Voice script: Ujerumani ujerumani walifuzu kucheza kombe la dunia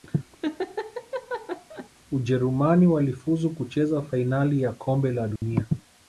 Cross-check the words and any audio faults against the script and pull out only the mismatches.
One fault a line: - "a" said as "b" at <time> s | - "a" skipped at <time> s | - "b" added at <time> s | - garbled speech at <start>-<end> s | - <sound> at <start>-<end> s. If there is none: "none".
- laugh at 0.4-1.9 s
- "ujerumani" skipped at 2.9 s
- "fainali ya" added at 4.0 s
- dropout at 5.4-5.4 s